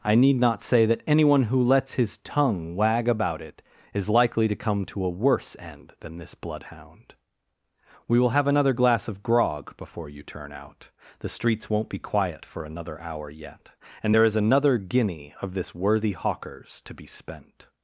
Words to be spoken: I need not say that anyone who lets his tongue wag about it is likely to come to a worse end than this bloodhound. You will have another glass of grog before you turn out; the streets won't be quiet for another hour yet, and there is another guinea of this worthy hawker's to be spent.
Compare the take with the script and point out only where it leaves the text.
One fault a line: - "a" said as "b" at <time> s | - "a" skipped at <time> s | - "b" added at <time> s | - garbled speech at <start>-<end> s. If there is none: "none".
- "You" said as "We" at 8.1 s